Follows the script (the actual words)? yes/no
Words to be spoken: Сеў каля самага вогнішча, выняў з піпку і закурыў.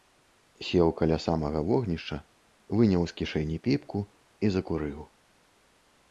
no